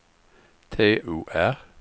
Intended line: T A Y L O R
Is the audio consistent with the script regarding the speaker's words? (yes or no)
no